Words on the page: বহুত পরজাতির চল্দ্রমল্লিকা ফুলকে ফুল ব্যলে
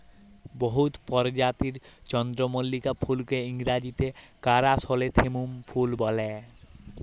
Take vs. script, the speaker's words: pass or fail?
fail